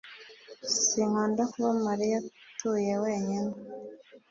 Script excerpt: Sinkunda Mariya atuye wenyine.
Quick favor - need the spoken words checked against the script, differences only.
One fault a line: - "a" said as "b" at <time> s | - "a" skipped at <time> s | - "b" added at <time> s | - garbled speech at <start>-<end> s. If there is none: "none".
- "kuba" added at 1.5 s